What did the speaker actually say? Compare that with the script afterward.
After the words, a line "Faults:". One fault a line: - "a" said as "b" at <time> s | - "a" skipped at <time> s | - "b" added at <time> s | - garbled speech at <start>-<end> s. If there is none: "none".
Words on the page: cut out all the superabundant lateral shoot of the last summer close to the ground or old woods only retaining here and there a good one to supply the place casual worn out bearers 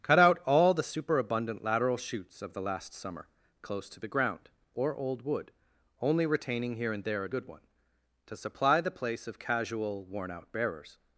cut out all the superabundant lateral shoots of the last summer close to the ground or old wood only retaining here and there a good one to supply the place of casual worn out bearers
Faults:
- "shoot" said as "shoots" at 2.0 s
- "woods" said as "wood" at 5.2 s
- "of" added at 9.3 s